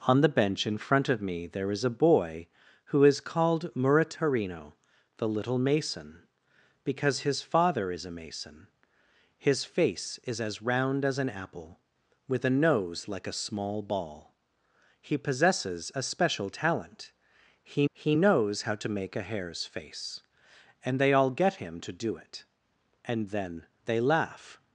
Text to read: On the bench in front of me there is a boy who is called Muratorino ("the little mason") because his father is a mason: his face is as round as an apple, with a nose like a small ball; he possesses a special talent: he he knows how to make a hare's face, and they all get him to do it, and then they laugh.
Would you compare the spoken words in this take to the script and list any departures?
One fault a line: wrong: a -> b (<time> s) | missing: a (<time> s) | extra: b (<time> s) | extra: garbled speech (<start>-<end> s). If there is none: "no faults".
no faults